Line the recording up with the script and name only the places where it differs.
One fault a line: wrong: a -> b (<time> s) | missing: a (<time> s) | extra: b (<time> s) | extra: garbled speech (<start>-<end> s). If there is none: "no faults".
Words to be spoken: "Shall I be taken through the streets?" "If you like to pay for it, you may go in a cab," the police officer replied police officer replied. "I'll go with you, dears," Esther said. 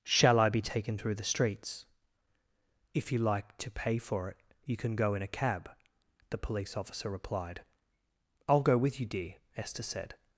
wrong: may -> can (4.8 s)
missing: police officer replied (7.6 s)
wrong: dears -> dear (9.1 s)